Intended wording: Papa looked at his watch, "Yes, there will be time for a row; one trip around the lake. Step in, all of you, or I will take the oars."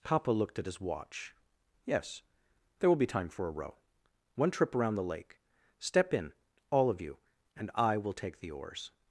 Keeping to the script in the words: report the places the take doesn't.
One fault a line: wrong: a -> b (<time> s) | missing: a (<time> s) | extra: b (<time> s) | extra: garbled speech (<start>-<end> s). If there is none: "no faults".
wrong: or -> and (7.5 s)